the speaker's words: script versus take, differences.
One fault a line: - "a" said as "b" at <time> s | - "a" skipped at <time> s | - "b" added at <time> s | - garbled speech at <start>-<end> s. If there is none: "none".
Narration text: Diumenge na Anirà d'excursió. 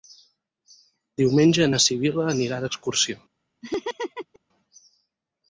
- "Sibil·la" added at 1.9 s